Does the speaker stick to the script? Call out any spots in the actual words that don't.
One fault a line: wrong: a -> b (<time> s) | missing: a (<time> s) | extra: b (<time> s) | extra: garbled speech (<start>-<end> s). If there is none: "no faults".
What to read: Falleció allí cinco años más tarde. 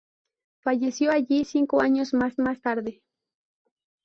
extra: más (2.4 s)